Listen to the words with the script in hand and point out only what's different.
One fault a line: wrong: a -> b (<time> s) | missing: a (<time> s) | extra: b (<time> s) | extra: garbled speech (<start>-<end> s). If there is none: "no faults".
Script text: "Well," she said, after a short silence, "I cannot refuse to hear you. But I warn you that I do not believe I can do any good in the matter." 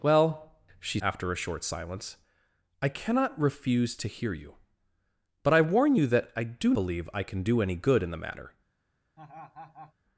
missing: said (1.0 s)
missing: not (6.7 s)